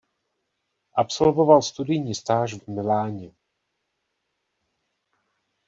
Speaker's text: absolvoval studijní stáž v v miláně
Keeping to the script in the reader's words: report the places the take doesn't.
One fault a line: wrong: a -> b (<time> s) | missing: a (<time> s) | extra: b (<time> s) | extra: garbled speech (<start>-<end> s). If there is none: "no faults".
no faults